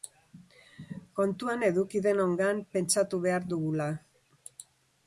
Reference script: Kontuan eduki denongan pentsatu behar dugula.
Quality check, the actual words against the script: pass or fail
pass